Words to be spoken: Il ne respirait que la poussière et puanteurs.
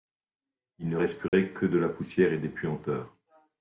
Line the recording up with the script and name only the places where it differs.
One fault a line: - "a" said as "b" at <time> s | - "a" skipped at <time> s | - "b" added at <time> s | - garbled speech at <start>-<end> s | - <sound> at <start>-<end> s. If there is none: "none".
- dropout at 1.3-1.3 s
- "de" added at 1.7 s
- "des" added at 2.4 s